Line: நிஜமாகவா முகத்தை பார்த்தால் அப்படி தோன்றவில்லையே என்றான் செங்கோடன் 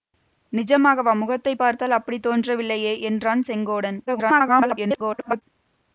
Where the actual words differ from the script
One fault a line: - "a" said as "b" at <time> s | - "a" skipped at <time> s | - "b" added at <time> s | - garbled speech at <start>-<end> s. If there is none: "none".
- garbled speech at 4.1-5.4 s